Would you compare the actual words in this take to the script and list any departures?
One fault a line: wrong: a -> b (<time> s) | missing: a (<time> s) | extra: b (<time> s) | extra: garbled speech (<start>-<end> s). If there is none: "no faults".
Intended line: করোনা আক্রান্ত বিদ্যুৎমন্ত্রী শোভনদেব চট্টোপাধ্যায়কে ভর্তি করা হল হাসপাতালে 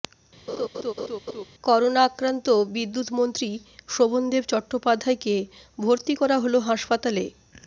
no faults